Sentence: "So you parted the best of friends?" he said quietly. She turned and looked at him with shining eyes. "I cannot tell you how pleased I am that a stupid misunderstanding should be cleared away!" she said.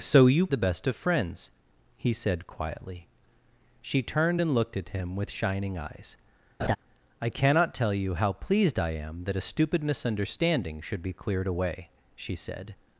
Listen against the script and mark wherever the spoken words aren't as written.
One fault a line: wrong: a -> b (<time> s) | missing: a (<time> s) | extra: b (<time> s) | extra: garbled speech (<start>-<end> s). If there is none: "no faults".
missing: parted (0.5 s)